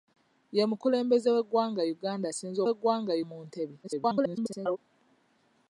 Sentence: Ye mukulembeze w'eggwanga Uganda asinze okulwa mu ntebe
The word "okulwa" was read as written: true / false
false